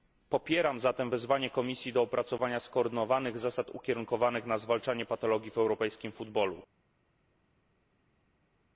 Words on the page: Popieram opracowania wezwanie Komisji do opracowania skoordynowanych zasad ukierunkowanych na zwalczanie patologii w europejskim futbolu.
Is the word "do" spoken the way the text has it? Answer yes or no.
yes